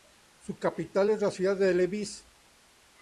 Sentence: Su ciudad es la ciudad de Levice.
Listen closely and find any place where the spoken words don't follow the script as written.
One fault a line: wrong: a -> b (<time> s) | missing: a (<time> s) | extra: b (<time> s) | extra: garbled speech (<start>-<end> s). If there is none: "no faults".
wrong: ciudad -> capital (0.6 s)